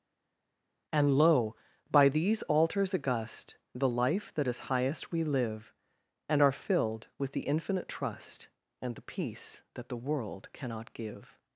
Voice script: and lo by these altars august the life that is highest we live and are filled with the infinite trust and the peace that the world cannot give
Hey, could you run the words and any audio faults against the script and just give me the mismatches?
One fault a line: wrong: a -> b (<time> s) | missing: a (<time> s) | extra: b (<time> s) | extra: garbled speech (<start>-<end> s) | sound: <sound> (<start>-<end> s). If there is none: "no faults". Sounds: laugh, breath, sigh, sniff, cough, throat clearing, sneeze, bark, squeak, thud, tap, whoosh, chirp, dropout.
no faults